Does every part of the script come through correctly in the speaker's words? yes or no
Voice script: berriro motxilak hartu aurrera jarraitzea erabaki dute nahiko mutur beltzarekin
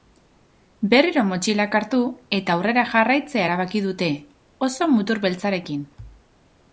no